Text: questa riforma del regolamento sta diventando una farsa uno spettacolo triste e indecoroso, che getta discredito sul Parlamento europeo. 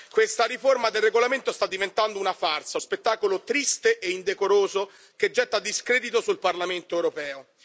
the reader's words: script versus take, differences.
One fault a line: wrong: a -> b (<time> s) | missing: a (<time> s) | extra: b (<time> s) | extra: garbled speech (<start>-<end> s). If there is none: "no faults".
missing: uno (2.8 s)